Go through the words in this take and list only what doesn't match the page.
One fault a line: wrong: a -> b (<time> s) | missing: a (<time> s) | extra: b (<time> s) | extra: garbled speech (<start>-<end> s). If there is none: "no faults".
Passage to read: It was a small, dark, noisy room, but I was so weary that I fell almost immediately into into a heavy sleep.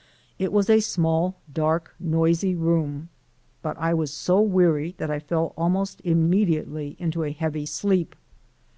missing: into (7.2 s)